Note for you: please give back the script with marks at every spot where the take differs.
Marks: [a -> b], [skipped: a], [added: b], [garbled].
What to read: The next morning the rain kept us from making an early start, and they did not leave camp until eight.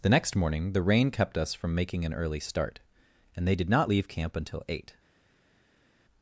The next morning the rain kept us from making an early start, and they did not leave camp until eight.